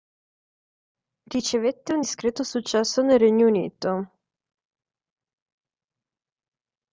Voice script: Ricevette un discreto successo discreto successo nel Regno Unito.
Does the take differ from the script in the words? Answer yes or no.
yes